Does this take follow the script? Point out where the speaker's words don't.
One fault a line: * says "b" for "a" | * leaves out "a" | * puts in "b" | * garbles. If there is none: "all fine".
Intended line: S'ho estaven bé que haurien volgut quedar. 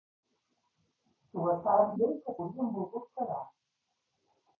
all fine